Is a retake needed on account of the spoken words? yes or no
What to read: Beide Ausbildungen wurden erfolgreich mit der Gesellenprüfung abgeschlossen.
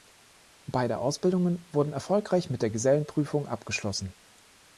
no